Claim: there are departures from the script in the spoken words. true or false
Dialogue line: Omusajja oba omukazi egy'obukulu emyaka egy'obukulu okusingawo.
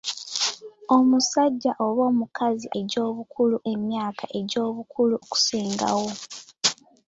false